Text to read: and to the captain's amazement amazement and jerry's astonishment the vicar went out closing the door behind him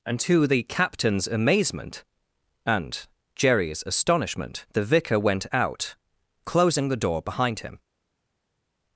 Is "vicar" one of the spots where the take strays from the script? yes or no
no